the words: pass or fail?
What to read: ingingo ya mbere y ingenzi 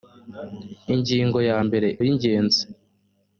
pass